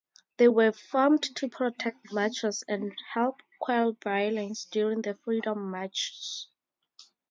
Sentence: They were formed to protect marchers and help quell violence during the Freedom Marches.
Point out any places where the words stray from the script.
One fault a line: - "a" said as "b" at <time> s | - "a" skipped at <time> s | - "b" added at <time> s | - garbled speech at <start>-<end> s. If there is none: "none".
none